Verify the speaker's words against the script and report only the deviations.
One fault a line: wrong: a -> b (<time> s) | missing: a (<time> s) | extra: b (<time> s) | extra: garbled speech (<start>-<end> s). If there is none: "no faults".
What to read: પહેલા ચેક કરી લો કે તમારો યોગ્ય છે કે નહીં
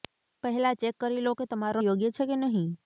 no faults